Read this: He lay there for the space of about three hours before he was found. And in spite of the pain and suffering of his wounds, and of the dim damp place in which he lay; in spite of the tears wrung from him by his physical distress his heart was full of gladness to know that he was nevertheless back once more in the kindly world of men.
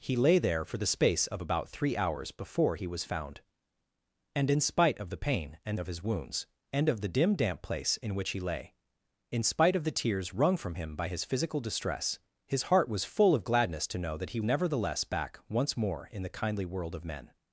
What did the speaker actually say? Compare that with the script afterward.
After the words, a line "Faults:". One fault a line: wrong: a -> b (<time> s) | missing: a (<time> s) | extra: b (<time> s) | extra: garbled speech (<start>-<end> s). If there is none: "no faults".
He lay there for the space of about three hours before he was found. And in spite of the pain and of his wounds, and of the dim damp place in which he lay; in spite of the tears wrung from him by his physical distress his heart was full of gladness to know that he nevertheless back once more in the kindly world of men.
Faults:
missing: suffering (5.8 s)
missing: was (14.4 s)